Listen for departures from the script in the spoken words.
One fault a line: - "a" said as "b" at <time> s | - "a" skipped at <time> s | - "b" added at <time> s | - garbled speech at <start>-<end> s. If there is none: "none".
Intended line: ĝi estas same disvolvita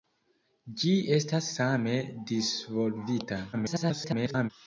- garbled speech at 3.5-4.5 s